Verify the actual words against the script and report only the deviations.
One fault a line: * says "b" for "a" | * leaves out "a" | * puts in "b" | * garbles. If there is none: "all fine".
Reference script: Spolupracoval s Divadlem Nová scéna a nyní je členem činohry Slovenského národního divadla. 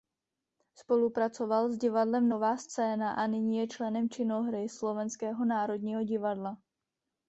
all fine